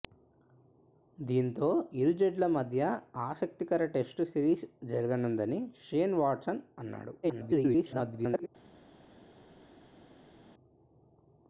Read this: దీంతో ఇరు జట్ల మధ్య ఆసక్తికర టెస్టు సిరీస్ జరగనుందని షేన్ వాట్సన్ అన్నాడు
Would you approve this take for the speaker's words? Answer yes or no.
no